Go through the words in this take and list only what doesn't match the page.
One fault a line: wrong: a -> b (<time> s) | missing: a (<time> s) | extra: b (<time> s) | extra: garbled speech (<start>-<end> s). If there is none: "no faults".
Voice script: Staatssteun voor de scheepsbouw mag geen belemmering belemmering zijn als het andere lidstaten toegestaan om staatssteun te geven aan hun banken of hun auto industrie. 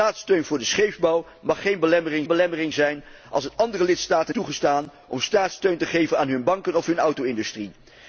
no faults